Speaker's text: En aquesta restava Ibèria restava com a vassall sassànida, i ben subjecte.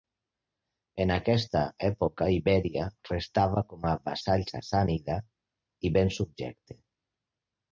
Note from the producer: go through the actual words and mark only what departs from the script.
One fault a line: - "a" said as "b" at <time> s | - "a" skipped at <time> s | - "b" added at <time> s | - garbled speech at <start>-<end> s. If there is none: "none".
- "restava" said as "època" at 1.9 s